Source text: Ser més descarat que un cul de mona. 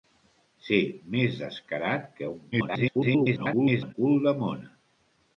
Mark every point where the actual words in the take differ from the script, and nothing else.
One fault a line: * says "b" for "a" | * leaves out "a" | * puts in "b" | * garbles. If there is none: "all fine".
* garbles